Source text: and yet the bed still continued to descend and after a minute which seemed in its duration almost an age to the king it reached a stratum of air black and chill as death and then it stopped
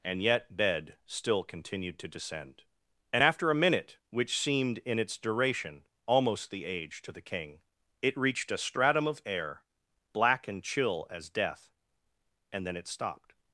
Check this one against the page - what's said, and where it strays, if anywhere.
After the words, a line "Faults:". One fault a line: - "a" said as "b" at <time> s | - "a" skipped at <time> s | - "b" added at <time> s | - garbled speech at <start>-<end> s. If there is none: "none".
and yet bed still continued to descend and after a minute which seemed in its duration almost the age to the king it reached a stratum of air black and chill as death and then it stopped
Faults:
- "the" skipped at 0.6 s
- "an" said as "the" at 6.5 s